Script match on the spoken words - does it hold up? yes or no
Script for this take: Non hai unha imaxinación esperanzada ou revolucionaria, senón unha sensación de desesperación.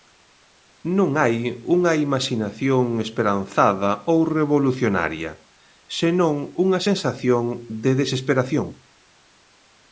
yes